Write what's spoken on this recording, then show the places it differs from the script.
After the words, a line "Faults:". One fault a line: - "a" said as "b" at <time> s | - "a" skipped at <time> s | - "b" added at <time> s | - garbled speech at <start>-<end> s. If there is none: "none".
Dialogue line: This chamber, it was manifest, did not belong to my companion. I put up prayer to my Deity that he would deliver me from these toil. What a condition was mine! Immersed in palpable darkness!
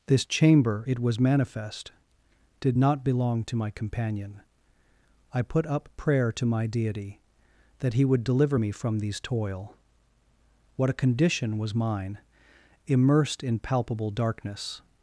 This chamber, it was manifest, did not belong to my companion. I put up prayer to my Deity that he would deliver me from these toil. What a condition was mine! Immersed in palpable darkness!
Faults:
none